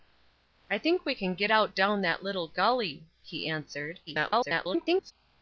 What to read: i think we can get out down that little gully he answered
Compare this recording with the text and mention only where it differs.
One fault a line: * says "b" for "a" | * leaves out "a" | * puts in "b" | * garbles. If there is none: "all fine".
* garbles